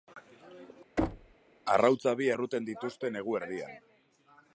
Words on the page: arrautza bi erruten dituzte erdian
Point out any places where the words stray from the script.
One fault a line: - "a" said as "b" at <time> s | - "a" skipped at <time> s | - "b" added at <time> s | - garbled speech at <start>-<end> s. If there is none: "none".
- "negu" added at 3.2 s